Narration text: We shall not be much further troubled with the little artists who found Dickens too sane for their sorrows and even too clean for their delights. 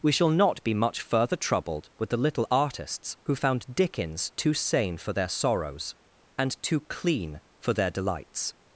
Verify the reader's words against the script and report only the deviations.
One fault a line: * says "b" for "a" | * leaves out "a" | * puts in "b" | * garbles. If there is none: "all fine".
* leaves out "even"